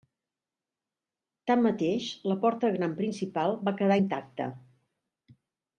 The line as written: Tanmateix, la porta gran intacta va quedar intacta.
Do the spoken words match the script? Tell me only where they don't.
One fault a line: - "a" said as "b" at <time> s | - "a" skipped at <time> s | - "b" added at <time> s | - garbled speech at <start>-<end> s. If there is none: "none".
- "intacta" said as "principal" at 3.0 s